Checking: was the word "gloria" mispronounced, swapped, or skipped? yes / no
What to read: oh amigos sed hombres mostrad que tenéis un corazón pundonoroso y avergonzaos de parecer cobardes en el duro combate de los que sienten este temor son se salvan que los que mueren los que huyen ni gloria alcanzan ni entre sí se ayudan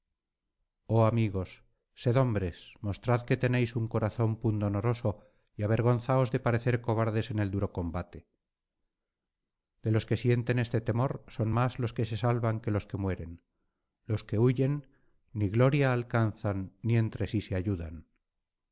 no